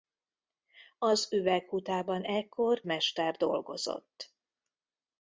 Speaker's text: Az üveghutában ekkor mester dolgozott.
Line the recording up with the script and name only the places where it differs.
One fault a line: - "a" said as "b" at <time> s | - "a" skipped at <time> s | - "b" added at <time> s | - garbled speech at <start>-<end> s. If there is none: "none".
none